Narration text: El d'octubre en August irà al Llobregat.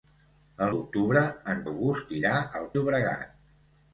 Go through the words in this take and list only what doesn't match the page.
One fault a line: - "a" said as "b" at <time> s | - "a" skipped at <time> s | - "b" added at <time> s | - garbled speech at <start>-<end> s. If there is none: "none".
none